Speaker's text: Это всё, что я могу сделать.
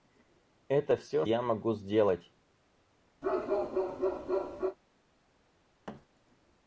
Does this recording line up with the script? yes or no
no